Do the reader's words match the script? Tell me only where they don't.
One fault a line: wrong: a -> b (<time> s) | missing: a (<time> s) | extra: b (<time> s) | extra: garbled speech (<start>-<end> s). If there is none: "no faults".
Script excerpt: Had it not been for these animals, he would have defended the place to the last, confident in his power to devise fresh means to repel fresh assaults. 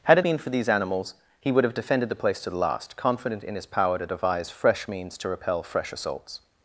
missing: not (0.2 s)